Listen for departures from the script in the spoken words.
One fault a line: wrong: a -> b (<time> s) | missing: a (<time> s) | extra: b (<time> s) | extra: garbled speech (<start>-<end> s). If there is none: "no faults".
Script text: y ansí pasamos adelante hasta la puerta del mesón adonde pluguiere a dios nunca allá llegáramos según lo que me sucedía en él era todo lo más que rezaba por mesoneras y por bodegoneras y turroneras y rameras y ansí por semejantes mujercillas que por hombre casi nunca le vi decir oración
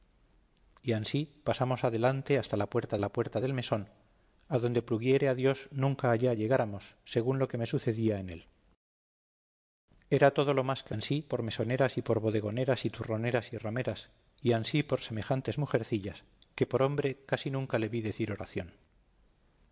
extra: la puerta (3.0 s)
wrong: rezaba -> ansí (10.9 s)